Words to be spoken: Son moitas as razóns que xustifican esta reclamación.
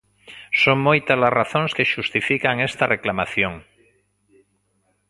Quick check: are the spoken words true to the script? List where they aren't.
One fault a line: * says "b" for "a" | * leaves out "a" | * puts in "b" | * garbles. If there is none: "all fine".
all fine